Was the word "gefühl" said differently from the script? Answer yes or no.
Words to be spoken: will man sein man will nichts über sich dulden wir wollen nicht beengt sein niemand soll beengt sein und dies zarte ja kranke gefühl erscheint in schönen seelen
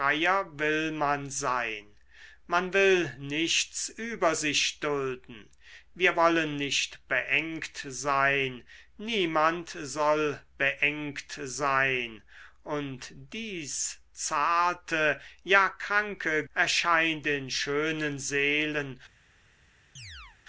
yes